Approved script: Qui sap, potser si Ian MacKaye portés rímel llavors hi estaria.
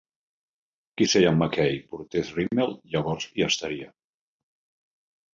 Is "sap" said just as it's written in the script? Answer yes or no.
no